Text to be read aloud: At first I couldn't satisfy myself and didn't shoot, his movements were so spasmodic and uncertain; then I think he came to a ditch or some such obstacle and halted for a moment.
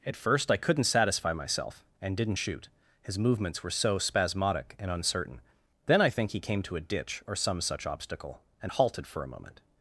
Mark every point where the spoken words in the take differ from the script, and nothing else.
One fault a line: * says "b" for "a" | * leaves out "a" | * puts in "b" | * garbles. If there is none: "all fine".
all fine